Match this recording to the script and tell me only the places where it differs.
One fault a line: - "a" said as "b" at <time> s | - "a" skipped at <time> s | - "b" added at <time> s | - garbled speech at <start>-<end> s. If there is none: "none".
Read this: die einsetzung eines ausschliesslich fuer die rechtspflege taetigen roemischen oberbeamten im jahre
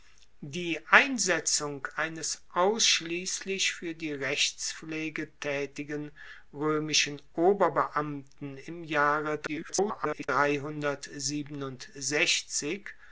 - garbled speech at 9.5-10.3 s